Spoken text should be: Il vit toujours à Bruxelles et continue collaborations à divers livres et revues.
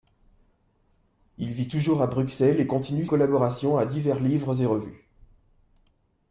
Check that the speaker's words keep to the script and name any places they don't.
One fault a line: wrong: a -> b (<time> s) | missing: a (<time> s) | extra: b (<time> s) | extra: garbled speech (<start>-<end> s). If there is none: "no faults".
no faults